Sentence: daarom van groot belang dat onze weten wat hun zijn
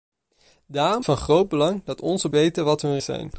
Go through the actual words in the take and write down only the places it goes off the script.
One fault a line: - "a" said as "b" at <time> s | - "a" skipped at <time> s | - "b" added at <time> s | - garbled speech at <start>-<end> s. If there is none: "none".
none